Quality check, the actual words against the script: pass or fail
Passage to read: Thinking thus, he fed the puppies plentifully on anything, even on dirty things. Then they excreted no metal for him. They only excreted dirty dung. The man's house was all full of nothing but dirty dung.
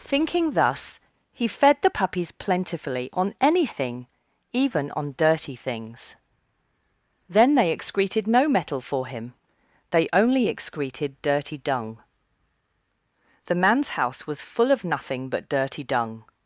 fail